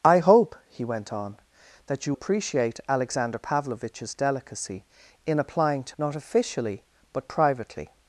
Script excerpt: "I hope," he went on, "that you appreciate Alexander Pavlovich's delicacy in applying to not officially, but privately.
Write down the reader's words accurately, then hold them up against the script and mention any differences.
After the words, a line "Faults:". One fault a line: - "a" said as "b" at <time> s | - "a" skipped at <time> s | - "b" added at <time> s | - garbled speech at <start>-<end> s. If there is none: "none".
"I hope," he went on, "that you appreciate Alexander Pavlovich's delicacy in applying to not officially, but privately.
Faults:
none